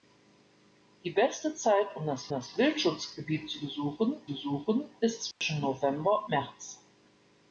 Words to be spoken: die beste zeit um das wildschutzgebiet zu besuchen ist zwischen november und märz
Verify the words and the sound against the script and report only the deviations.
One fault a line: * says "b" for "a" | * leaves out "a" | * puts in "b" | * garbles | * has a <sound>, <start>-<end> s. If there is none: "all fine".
* puts in "das"
* puts in "besuchen"
* has a dropout, 5.3-5.4 s
* leaves out "und"